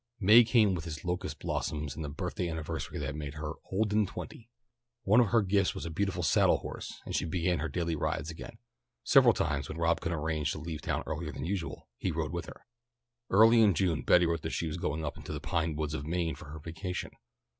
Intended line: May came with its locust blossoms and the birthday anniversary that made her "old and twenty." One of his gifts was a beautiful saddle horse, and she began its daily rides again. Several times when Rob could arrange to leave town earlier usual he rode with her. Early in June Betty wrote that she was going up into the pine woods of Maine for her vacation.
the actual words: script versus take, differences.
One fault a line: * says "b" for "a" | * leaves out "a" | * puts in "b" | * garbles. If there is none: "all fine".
* says "her" for "his"
* says "her" for "its"
* puts in "than"